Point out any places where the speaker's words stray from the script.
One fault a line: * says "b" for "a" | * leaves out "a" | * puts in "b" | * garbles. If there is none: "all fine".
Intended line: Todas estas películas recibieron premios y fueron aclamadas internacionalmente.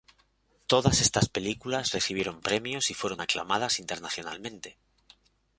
all fine